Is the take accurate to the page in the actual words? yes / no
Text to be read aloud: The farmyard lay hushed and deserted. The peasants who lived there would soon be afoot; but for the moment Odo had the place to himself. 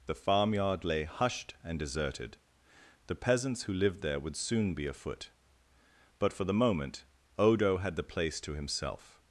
yes